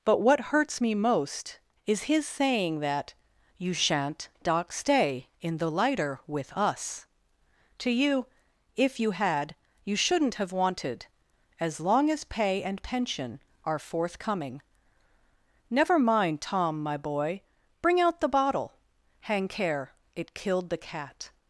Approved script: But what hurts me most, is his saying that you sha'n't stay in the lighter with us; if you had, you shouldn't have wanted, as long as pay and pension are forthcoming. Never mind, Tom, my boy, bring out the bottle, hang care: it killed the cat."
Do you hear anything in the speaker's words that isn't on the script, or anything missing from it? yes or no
yes